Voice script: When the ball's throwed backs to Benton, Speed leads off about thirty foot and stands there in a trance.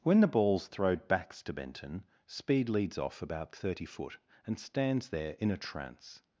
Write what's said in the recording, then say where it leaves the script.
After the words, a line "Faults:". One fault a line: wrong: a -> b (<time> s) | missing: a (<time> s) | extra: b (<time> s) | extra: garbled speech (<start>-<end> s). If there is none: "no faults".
When the ball's throwed backs to Benton, Speed leads off about thirty foot and stands there in a trance.
Faults:
no faults